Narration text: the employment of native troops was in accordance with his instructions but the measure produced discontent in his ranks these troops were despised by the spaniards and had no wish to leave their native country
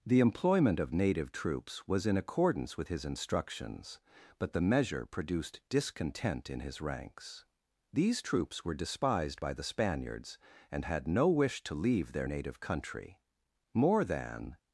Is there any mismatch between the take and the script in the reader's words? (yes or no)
yes